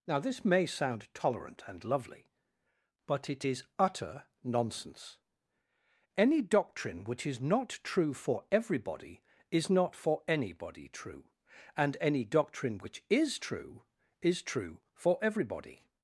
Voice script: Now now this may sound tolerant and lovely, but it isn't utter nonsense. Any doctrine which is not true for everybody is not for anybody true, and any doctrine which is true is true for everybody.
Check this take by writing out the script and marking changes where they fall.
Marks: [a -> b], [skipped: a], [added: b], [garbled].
Now [skipped: now] this may sound tolerant and lovely, but it [isn't -> is] utter nonsense. Any doctrine which is not true for everybody is not for anybody true, and any doctrine which is true is true for everybody.